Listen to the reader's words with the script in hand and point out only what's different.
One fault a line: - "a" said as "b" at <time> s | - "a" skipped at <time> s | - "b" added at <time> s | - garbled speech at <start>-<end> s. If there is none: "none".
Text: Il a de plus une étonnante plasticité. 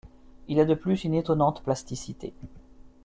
none